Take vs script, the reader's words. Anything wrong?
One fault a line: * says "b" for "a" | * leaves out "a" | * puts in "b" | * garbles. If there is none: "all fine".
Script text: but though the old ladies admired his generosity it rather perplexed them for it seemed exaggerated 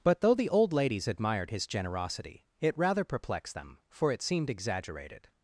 all fine